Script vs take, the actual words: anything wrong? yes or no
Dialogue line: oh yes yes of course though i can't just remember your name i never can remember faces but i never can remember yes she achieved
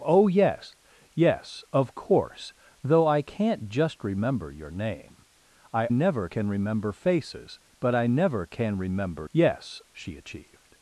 no